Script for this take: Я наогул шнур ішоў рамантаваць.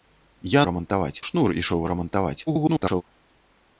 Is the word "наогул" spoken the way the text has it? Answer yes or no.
no